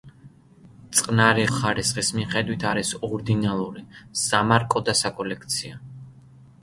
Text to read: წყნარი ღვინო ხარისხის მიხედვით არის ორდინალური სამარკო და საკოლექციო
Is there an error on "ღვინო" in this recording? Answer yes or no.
yes